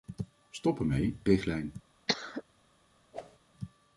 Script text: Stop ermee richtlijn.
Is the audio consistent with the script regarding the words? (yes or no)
yes